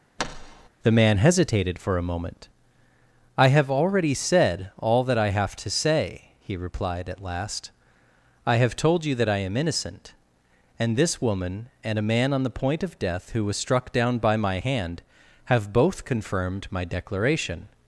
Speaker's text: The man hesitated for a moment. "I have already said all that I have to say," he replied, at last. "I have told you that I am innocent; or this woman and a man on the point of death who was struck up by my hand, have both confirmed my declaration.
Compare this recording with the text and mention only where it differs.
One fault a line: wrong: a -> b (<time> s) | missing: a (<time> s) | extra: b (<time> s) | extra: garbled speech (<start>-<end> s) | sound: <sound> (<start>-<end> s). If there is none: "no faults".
sound: thud (0.2-0.7 s)
wrong: or -> and (10.8 s)
wrong: up -> down (13.9 s)